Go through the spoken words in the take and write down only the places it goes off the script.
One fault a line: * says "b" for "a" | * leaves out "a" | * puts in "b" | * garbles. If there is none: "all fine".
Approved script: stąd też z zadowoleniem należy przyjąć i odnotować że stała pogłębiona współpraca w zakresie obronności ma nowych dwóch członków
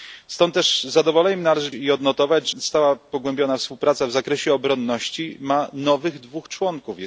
* leaves out "przyjąć"
* leaves out "że"